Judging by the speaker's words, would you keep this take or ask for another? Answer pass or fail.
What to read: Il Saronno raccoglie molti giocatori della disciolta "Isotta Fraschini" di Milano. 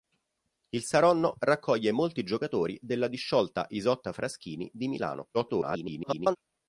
fail